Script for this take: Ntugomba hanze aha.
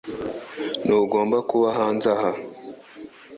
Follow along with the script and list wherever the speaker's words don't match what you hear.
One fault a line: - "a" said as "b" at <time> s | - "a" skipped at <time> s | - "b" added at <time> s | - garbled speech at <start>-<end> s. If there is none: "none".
- "kuba" added at 1.5 s